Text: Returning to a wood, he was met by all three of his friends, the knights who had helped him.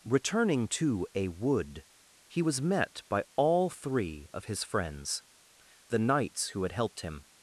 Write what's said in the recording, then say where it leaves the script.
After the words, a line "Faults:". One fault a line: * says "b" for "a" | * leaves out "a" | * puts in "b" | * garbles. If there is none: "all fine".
Returning to a wood, he was met by all three of his friends, the knights who had helped him.
Faults:
all fine